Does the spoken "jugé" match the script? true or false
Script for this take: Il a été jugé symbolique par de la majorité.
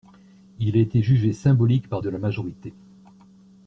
true